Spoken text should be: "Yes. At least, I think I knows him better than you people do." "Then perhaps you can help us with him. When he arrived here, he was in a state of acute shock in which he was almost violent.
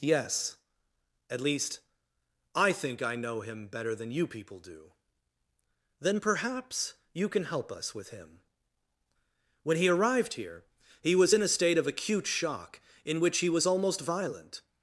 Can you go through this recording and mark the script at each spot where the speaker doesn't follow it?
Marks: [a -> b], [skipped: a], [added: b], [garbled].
"Yes. At least, I think I [knows -> know] him better than you people do." "Then perhaps you can help us with him. When he arrived here, he was in a state of acute shock in which he was almost violent.